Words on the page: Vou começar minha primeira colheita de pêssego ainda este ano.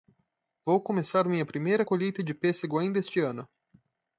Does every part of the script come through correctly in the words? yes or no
yes